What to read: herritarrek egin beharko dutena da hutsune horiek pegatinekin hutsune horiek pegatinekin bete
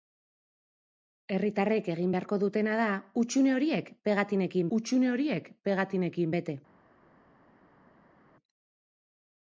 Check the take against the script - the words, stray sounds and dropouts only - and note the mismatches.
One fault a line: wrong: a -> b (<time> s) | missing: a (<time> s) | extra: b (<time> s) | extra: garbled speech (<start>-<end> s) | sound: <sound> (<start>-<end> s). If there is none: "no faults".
no faults